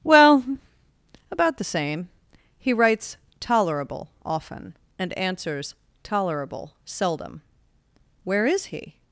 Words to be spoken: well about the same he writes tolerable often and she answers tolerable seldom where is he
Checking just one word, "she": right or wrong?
wrong